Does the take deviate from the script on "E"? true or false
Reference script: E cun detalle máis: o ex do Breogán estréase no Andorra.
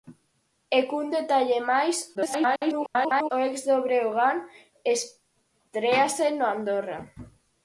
false